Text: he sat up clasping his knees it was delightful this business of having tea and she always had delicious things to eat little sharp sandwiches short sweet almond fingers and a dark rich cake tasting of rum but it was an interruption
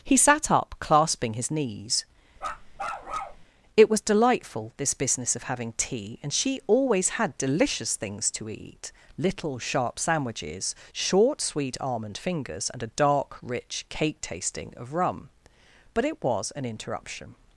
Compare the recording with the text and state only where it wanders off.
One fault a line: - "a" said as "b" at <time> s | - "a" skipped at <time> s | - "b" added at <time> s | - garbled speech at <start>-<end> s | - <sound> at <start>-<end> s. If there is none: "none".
- bark at 2.4-3.5 s